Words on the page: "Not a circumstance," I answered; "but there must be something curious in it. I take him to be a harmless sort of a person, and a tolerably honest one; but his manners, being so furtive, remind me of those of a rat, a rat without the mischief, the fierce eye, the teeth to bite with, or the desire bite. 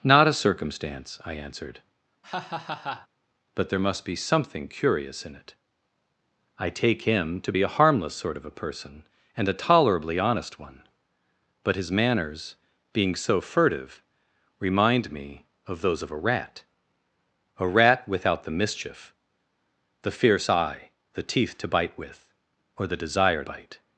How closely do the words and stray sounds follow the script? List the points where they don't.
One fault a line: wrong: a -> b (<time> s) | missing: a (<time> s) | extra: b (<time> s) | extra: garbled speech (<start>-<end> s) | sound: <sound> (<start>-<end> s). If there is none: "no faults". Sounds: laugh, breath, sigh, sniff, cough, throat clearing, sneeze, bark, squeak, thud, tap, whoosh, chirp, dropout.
sound: laugh (2.2-3.1 s)